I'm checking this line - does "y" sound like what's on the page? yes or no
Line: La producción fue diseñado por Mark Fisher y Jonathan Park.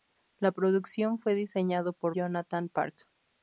no